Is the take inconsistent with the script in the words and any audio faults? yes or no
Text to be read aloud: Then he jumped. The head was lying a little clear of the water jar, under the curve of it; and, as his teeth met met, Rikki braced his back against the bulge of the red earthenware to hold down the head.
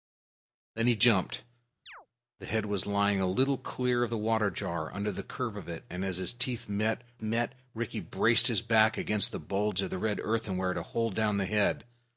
yes